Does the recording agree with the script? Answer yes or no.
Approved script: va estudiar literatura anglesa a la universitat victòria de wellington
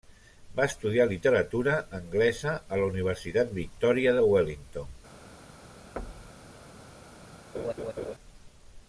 yes